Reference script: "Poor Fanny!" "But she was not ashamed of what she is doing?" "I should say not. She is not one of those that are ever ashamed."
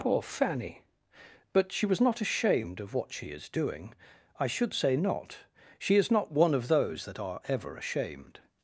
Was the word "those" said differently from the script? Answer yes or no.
no